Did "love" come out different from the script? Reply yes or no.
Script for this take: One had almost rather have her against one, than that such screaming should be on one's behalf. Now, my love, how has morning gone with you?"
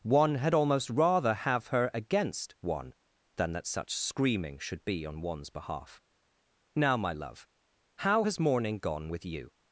no